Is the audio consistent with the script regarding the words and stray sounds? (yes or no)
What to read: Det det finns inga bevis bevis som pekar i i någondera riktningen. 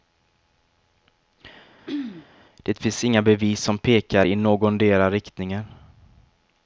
no